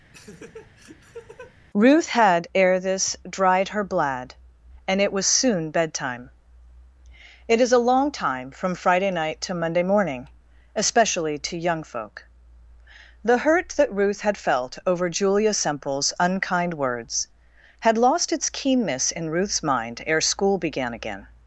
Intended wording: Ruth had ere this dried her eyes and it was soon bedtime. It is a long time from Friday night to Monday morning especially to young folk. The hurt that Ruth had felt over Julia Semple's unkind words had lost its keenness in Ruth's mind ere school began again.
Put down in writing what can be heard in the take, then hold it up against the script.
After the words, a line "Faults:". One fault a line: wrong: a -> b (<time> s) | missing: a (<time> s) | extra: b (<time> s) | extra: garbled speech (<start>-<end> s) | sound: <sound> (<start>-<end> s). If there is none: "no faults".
Ruth had ere this dried her blad and it was soon bedtime. It is a long time from Friday night to Monday morning especially to young folk. The hurt that Ruth had felt over Julia Semple's unkind words had lost its keenness in Ruth's mind ere school began again.
Faults:
sound: laugh (0.1-1.6 s)
wrong: eyes -> blad (3.8 s)